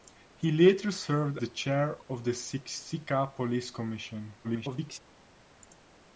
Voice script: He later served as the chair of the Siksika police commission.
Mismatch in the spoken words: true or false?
true